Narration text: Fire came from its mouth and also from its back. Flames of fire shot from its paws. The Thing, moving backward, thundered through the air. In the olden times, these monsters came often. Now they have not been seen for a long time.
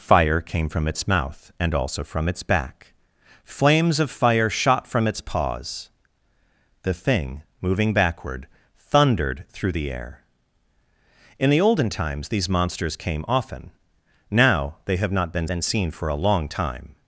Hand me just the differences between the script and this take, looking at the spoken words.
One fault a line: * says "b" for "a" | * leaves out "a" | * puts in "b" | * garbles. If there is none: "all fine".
* puts in "been"